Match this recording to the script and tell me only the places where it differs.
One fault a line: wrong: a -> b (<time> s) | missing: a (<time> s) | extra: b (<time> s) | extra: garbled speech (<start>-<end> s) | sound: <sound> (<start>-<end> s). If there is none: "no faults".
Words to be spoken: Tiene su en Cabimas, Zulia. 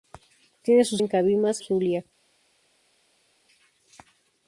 no faults